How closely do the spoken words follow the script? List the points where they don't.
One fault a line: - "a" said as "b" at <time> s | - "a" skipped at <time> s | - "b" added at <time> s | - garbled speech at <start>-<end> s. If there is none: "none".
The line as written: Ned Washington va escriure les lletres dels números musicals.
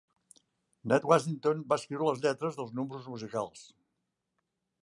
none